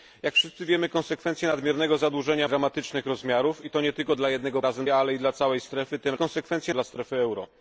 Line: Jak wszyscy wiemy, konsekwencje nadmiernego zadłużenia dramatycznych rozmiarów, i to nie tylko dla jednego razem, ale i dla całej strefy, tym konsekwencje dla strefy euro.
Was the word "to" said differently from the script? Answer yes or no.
no